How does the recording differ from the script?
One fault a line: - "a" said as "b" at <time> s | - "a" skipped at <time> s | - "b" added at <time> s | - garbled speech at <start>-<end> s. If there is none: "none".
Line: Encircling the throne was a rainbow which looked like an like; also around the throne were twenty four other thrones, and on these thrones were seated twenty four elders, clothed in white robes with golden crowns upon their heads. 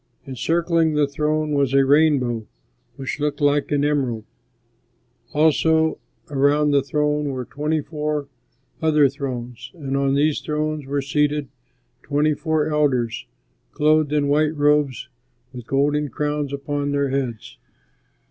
- "like" said as "emerald" at 3.9 s